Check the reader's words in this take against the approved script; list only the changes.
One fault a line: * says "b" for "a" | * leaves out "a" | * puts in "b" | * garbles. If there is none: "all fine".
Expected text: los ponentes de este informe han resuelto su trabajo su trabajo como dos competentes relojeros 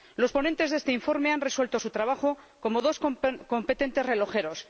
* leaves out "su trabajo"